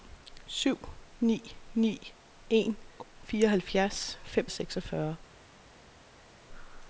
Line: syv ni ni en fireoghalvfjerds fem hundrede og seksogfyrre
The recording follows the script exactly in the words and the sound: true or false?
false